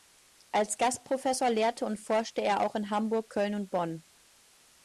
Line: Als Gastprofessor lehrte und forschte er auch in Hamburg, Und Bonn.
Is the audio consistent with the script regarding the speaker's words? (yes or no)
no